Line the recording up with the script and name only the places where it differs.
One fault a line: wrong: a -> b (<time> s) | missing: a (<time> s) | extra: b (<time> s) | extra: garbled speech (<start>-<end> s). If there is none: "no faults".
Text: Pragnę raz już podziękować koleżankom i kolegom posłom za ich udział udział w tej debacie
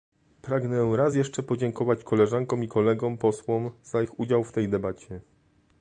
wrong: już -> jeszcze (1.1 s)
missing: udział (4.4 s)